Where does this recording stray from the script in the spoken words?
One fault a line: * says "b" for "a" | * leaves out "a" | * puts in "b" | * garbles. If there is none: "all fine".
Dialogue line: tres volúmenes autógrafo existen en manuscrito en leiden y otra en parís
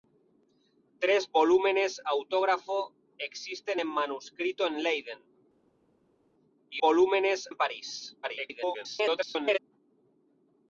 * says "volúmenes" for "otra"
* garbles